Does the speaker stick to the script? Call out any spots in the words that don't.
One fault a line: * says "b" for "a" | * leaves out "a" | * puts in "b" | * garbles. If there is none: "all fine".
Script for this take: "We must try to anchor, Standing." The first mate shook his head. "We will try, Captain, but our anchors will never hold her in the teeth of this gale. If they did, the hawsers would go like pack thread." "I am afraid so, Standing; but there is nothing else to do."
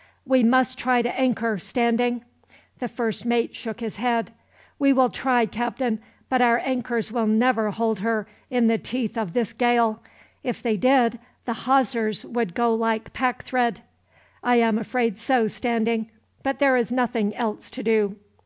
all fine